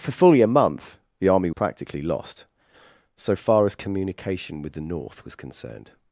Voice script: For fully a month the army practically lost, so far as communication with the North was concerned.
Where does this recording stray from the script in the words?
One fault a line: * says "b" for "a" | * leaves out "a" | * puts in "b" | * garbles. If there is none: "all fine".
all fine